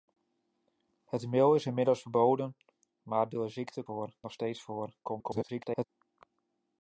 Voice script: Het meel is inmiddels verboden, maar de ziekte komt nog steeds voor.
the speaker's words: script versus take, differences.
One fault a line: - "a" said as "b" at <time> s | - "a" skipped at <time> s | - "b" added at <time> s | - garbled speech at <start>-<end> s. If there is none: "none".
- "komt" said as "voor" at 3.8 s
- garbled speech at 5.0-5.8 s